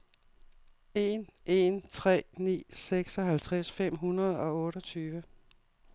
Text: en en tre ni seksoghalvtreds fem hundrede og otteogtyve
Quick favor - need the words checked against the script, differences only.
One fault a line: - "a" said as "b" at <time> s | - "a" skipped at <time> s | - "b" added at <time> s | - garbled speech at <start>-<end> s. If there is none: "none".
none